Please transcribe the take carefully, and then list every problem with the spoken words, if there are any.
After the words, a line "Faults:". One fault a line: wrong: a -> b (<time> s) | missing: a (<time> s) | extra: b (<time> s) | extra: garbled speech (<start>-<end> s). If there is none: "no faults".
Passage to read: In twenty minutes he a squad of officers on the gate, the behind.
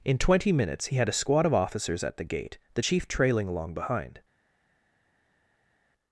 In twenty minutes he had a squad of officers at the gate, the chief trailing along behind.
Faults:
extra: had (1.0 s)
wrong: on -> at (2.0 s)
extra: chief trailing along (2.8 s)